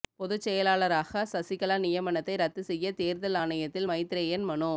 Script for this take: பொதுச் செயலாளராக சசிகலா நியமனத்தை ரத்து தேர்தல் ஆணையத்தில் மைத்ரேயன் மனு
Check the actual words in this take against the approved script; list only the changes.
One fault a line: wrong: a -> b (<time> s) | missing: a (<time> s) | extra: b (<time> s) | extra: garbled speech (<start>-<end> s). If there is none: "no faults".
extra: செய்ய (2.6 s)